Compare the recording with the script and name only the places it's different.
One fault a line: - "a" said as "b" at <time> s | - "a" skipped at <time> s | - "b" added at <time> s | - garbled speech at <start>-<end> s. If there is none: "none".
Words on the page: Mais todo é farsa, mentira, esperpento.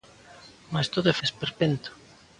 - "farsa mentira" skipped at 1.1 s